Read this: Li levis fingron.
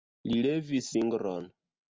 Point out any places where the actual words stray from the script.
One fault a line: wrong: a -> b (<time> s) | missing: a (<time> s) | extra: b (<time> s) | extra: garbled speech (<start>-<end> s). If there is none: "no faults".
no faults